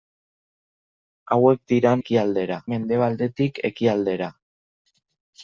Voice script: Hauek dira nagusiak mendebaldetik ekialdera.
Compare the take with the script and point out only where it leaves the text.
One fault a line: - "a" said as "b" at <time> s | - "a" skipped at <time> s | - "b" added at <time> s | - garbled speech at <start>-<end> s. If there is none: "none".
- "nagusiak" said as "ekialdera" at 2.0 s